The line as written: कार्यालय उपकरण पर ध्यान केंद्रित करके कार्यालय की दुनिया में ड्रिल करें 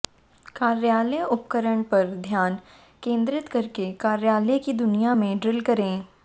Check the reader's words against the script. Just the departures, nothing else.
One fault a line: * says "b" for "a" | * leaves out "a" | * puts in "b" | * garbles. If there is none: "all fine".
all fine